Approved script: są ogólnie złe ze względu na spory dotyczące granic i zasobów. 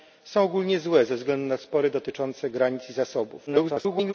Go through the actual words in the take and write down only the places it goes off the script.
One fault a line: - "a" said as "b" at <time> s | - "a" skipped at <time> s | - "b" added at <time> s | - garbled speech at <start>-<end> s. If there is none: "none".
- garbled speech at 3.5-4.1 s